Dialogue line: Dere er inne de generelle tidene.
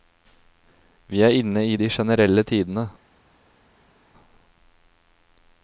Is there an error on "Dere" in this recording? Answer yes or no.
yes